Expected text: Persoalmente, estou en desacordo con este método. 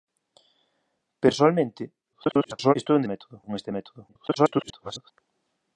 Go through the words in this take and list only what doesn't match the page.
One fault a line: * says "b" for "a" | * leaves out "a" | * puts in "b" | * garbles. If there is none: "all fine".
* garbles
* says "método" for "desacordo"
* garbles